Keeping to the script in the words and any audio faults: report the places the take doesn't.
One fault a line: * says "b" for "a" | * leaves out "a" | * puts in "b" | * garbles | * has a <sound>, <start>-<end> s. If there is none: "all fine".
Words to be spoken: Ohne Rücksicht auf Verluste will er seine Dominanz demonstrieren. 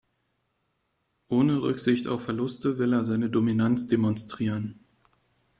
all fine